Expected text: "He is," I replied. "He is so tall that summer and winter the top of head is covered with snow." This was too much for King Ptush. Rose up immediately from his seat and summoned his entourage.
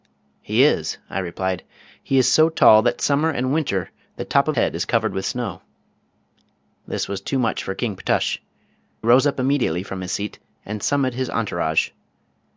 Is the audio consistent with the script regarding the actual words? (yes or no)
yes